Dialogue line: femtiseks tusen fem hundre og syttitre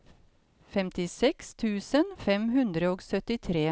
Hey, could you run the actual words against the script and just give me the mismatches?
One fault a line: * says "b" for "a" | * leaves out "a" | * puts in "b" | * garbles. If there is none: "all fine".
all fine